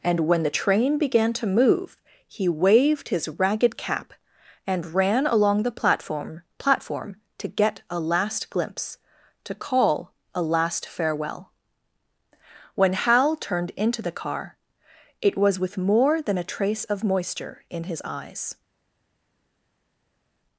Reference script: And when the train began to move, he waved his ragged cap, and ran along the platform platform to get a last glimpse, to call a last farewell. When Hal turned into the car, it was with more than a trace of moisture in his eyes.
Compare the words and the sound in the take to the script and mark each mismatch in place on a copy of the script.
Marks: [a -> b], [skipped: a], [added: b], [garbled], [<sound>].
And when the train began to move, he waved his ragged cap, and ran along the platform platform to get a last glimpse, to call a last farewell. When Hal turned into the car, it was with more than a trace of moisture in his eyes.